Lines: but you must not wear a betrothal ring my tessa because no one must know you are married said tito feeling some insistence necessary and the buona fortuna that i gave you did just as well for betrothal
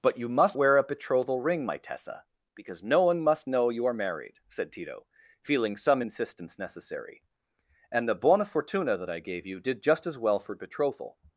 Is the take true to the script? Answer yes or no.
no